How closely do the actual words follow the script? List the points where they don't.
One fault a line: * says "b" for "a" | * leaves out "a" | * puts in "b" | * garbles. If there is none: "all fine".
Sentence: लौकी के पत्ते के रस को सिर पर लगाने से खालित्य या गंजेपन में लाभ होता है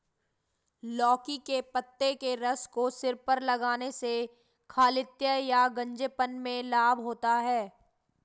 all fine